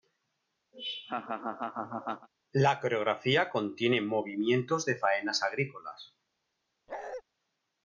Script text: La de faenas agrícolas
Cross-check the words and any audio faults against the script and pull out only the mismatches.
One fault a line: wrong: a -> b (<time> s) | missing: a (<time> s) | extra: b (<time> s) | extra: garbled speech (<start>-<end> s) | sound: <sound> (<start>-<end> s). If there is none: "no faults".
sound: laugh (0.7-2.3 s)
extra: coreografía contiene movimientos (2.8 s)
sound: bark (6.9-7.2 s)